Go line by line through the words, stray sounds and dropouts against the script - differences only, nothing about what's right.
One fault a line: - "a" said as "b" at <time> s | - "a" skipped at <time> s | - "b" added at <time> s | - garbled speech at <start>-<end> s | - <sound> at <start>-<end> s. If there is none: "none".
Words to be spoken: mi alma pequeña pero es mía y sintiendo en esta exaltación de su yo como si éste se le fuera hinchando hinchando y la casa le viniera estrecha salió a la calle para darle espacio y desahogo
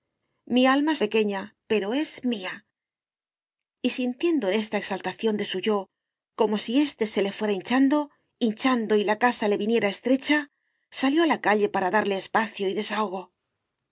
none